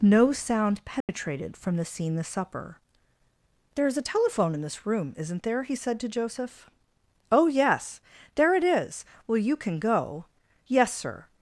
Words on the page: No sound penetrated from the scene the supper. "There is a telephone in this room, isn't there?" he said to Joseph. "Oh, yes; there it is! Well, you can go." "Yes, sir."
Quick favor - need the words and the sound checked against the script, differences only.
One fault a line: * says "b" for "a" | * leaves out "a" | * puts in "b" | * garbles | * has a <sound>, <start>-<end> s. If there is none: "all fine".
* has a dropout, 1.0-1.1 s